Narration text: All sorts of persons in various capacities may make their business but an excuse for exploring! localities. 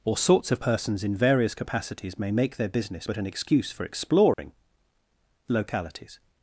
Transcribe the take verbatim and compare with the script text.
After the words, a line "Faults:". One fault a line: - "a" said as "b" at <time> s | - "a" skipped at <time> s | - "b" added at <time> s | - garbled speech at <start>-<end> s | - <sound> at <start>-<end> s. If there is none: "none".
Or sorts of persons in various capacities may make their business but an excuse for exploring! localities.
Faults:
- "All" said as "Or" at 0.0 s
- dropout at 4.3-4.4 s